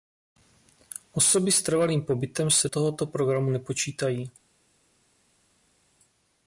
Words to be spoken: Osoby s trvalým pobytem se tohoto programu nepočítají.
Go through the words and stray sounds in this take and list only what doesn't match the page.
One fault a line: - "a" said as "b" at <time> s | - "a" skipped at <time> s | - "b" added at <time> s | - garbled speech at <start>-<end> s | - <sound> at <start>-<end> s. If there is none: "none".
none